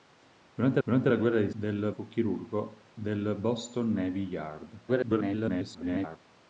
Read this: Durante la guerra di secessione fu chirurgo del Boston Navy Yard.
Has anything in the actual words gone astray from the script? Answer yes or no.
yes